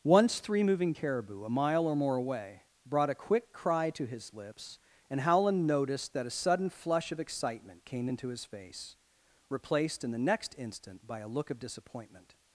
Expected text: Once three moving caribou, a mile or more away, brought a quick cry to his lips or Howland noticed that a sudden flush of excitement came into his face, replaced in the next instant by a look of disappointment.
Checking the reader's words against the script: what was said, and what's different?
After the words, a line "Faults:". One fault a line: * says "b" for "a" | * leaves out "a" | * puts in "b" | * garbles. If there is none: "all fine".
Once three moving caribou, a mile or more away, brought a quick cry to his lips and Howland noticed that a sudden flush of excitement came into his face, replaced in the next instant by a look of disappointment.
Faults:
* says "and" for "or"